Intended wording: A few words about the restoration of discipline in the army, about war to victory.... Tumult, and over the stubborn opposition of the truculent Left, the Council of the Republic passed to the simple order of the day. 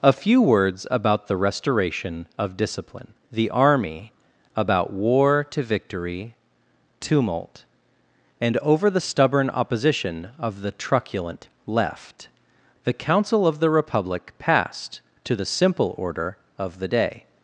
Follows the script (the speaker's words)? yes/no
no